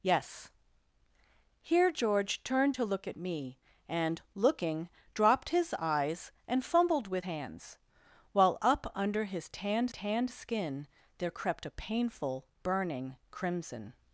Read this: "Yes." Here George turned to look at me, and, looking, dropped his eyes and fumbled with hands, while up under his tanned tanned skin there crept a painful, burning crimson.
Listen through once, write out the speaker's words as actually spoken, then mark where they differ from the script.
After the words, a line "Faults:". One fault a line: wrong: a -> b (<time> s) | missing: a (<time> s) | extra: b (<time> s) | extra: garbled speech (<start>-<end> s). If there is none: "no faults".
"Yes." Here George turned to look at me, and, looking, dropped his eyes and fumbled with hands, while up under his tanned tanned skin there crept a painful, burning crimson.
Faults:
no faults